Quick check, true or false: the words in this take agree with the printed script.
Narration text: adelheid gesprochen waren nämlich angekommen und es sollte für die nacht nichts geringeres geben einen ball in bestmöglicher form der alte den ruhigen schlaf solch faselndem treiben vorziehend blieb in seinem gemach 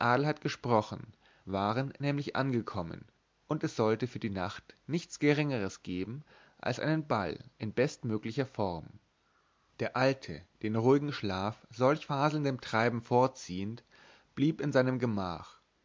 false